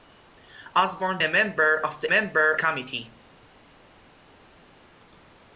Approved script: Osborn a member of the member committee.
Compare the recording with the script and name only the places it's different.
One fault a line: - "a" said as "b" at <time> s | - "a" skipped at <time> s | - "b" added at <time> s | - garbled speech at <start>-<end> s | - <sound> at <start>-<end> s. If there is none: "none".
none